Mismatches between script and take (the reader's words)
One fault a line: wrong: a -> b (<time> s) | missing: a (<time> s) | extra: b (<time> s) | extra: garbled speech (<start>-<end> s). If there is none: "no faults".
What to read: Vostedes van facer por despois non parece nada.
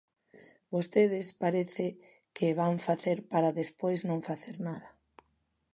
extra: parece que (1.4 s)
wrong: por -> para (3.3 s)
wrong: parece -> facer (4.3 s)